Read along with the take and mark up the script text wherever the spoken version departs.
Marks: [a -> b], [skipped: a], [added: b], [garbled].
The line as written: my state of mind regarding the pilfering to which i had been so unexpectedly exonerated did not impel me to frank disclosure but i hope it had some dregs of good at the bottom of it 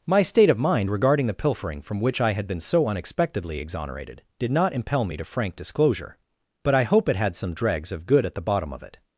my state of mind regarding the pilfering [to -> from] which i had been so unexpectedly exonerated did not impel me to frank disclosure but i hope it had some dregs of good at the bottom of it